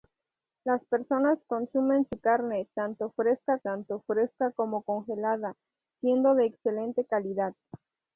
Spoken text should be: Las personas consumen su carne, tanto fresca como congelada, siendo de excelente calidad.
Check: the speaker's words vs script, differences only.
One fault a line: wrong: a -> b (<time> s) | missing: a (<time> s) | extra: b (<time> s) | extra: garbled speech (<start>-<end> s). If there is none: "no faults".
extra: tanto fresca (3.6 s)